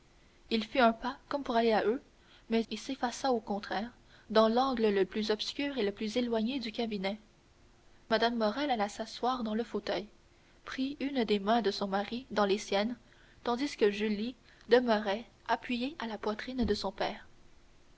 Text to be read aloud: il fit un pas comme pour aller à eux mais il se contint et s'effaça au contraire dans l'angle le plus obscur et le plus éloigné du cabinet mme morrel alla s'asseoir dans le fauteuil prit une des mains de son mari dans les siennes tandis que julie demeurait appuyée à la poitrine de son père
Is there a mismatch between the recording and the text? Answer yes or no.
yes